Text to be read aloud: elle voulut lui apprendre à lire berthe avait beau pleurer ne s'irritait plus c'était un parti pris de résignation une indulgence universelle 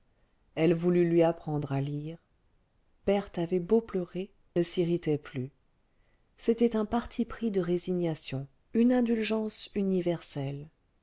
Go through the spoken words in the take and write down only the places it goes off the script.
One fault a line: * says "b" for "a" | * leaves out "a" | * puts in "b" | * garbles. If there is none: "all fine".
all fine